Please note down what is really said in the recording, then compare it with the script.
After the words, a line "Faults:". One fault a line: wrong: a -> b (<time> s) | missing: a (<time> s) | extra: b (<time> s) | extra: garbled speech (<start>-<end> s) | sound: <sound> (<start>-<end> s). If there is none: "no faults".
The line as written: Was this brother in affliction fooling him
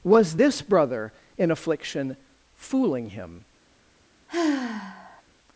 Was this brother in affliction fooling him
Faults:
sound: sigh (4.3-5.2 s)